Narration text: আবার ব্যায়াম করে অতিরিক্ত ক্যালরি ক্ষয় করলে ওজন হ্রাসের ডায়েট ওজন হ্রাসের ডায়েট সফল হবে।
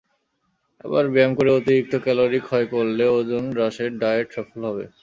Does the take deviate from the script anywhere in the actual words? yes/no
yes